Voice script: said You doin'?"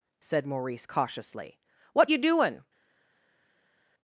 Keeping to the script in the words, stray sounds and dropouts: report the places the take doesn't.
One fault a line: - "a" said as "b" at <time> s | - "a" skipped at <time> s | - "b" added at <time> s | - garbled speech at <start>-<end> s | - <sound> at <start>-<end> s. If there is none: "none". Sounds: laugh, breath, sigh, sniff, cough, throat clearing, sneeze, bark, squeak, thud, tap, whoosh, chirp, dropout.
- "Maurice cautiously What" added at 0.5 s